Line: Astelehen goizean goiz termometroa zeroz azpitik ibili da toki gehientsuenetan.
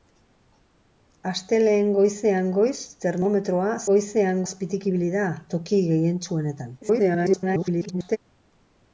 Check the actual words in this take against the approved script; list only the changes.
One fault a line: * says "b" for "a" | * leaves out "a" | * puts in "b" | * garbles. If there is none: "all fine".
* says "goizean" for "zeroz"
* garbles